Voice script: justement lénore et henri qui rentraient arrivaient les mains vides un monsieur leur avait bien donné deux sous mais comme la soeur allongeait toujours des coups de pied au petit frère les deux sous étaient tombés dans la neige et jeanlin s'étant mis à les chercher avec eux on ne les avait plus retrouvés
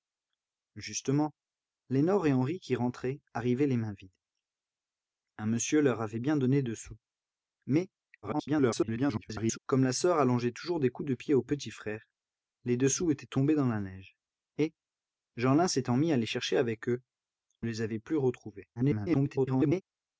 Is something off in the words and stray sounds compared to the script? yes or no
yes